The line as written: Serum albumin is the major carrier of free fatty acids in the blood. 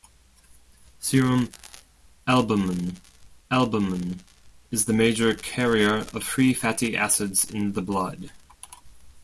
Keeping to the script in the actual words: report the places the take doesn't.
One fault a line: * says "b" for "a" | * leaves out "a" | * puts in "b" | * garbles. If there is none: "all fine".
* puts in "albumin"